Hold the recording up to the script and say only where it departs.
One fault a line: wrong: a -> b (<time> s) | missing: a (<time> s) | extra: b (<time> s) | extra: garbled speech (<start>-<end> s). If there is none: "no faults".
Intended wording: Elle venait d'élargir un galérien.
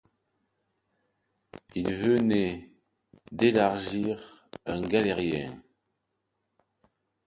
wrong: Elle -> Il (1.8 s)